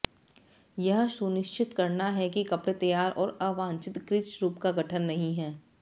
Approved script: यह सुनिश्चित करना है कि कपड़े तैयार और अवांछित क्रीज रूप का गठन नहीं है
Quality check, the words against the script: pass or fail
pass